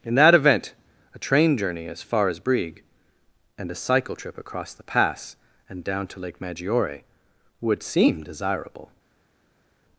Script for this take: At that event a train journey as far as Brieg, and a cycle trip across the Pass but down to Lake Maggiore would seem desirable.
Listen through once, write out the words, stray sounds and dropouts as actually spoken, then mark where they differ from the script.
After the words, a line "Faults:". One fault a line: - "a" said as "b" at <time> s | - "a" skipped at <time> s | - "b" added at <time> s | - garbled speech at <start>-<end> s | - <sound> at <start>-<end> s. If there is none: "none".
In that event a train journey as far as Brieg, and a cycle trip across the Pass and down to Lake Maggiore would seem desirable.
Faults:
- "At" said as "In" at 0.0 s
- "but" said as "and" at 5.7 s